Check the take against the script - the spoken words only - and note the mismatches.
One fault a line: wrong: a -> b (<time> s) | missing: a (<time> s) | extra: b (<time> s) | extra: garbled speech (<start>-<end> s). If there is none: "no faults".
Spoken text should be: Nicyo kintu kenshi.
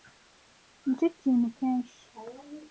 no faults